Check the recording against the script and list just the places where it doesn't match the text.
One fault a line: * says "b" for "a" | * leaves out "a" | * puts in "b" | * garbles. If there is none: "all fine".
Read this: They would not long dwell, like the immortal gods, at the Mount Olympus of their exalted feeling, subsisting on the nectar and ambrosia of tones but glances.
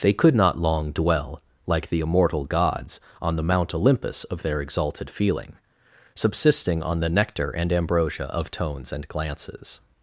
* says "could" for "would"
* says "on" for "at"
* says "and" for "but"